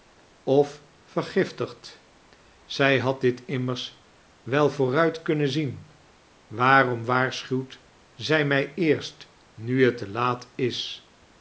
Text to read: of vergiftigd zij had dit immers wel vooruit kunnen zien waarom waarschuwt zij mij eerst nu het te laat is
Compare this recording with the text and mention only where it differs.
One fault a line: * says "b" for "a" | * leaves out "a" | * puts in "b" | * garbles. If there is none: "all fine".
all fine